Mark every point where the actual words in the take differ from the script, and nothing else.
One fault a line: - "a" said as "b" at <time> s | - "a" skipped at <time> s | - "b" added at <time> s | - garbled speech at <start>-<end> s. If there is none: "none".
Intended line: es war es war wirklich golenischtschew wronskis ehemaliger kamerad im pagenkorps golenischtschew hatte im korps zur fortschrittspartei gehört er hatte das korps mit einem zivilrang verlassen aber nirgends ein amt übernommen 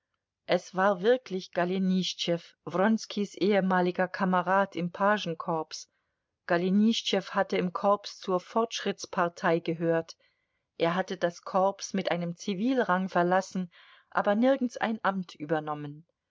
- "es war" skipped at 1.0 s